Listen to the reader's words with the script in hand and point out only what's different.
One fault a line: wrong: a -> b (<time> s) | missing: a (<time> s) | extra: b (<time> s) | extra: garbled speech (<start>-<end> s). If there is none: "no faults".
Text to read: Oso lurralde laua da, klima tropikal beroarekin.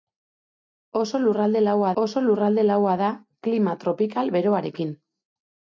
extra: oso lurralde laua (2.0 s)